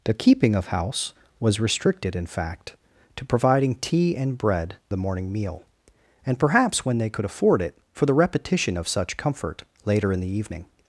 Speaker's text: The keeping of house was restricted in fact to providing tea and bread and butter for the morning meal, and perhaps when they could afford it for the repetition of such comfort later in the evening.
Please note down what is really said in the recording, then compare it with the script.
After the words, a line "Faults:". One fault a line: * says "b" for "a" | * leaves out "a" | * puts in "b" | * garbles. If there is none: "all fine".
The keeping of house was restricted in fact to providing tea and bread the morning meal, and perhaps when they could afford it for the repetition of such comfort later in the evening.
Faults:
* leaves out "and butter for"